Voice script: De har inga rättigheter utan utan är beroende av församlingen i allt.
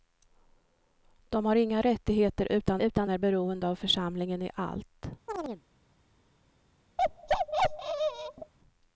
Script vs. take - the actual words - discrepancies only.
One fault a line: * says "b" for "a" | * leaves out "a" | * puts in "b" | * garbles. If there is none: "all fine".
all fine